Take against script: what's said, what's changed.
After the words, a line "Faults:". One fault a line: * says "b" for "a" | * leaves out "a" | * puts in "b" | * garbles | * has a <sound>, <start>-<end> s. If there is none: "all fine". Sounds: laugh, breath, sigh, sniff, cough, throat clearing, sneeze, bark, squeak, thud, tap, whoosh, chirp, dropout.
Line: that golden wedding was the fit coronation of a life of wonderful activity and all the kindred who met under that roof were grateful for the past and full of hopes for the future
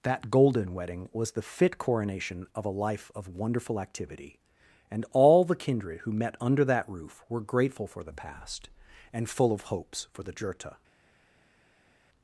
that golden wedding was the fit coronation of a life of wonderful activity and all the kindred who met under that roof were grateful for the past and full of hopes for the jurta
Faults:
* says "jurta" for "future"